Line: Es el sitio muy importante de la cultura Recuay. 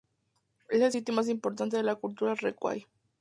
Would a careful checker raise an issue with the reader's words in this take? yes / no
yes